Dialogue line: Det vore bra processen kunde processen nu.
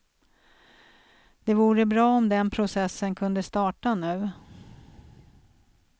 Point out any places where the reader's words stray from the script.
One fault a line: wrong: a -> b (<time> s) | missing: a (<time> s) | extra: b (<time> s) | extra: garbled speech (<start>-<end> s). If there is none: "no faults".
extra: om den (2.0 s)
wrong: processen -> starta (3.4 s)